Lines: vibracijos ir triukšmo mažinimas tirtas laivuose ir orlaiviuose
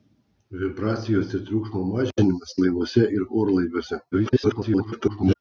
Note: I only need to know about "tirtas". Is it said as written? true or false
false